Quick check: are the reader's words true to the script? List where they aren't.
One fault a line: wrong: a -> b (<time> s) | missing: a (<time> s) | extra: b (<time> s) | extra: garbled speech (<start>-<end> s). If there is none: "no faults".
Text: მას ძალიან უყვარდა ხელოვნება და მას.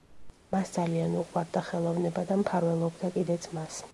extra: მფარველობდა კიდეც (2.4 s)